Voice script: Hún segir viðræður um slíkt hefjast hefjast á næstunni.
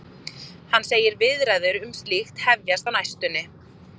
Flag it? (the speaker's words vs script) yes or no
yes